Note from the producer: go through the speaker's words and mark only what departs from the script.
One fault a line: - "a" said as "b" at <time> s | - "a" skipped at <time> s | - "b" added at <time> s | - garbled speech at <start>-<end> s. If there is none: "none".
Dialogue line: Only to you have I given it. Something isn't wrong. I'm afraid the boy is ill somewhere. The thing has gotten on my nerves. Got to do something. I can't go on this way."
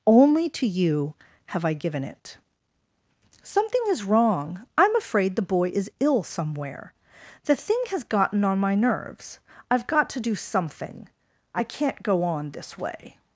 - "isn't" said as "is" at 3.9 s
- "I've" added at 9.7 s